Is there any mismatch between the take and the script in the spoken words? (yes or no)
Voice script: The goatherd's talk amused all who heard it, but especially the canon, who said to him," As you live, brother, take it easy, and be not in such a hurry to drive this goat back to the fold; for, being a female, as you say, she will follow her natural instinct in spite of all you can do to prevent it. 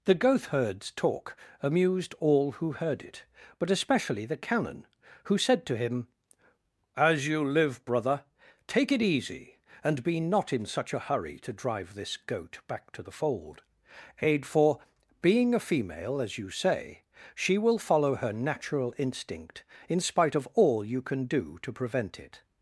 yes